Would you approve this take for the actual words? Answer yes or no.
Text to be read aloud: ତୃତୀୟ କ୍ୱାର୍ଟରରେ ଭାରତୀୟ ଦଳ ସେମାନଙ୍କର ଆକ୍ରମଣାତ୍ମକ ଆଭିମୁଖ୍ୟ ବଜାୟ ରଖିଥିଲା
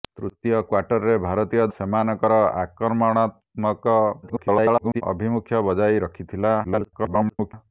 no